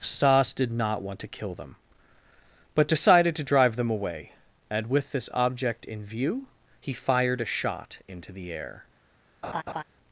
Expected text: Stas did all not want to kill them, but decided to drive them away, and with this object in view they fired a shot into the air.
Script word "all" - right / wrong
wrong